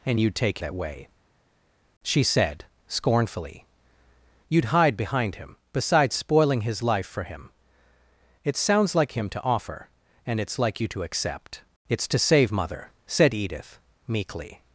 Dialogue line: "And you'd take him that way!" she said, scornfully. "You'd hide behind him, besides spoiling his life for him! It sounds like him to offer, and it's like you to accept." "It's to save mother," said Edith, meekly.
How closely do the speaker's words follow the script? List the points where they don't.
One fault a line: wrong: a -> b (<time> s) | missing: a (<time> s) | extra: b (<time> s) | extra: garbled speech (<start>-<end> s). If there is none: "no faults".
missing: him (0.6 s)